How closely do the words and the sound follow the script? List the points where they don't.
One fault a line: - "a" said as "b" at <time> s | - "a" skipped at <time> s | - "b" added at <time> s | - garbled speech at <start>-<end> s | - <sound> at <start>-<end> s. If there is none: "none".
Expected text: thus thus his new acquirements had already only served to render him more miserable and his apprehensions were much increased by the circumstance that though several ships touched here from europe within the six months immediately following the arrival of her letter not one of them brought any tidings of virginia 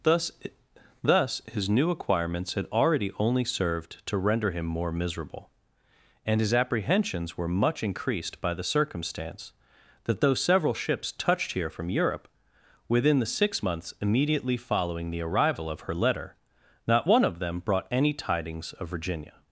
none